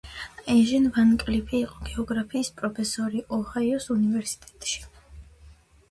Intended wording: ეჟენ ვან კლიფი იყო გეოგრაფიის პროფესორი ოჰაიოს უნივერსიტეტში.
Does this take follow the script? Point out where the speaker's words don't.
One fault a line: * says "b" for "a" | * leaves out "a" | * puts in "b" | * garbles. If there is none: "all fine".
all fine